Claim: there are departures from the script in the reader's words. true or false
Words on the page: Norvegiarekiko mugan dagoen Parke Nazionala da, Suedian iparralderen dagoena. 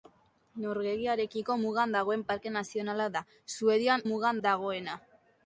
true